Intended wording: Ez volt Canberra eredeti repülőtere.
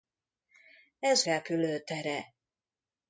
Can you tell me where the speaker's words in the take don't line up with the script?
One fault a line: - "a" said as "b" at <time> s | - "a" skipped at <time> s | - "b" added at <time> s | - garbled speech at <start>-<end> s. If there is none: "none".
- "volt Canberra eredeti" skipped at 1.2 s